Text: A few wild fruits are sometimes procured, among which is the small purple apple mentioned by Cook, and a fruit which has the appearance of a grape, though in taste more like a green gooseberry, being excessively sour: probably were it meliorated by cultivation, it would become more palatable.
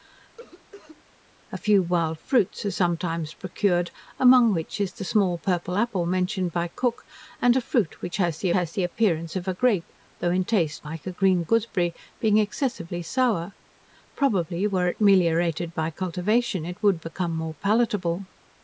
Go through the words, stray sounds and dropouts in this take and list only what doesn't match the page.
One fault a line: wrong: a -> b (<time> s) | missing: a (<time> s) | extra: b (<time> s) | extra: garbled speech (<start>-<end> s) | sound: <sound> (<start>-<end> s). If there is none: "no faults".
sound: cough (0.4-1.0 s)
extra: has the (8.5 s)
missing: more (10.9 s)